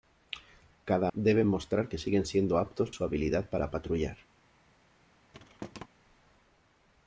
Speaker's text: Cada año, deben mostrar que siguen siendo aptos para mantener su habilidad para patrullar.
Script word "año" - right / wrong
wrong